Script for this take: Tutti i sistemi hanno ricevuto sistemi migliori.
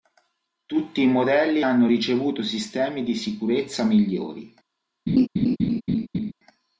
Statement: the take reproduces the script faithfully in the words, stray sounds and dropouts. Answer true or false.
false